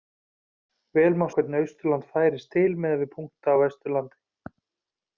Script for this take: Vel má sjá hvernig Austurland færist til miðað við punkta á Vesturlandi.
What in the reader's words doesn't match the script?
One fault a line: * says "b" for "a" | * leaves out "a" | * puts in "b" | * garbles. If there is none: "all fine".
* leaves out "sjá"